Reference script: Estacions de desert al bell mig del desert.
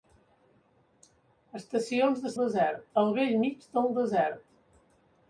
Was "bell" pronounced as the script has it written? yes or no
yes